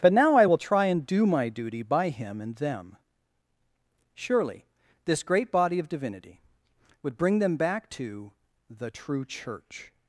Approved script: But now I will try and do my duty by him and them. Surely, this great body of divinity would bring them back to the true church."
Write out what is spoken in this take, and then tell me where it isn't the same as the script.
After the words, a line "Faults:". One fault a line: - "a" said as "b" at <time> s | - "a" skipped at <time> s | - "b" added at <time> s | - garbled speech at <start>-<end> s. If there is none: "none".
But now I will try and do my duty by him and them. Surely, this great body of divinity would bring them back to the true church."
Faults:
none